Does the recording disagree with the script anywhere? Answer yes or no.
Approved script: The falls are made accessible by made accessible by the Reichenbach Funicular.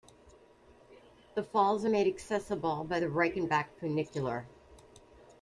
yes